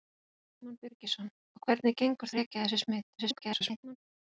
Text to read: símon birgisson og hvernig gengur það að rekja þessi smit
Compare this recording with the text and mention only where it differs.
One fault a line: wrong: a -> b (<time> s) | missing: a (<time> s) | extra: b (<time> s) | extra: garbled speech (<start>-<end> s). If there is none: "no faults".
missing: það (2.4 s)
extra: garbled speech (3.2-4.0 s)